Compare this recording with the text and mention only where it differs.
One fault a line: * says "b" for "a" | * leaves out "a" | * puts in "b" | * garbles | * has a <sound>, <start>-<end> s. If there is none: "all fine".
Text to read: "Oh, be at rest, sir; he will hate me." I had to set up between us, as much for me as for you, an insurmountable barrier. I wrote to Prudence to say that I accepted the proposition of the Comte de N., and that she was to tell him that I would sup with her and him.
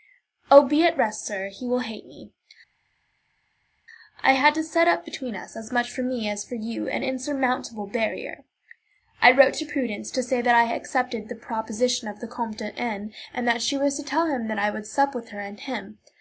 all fine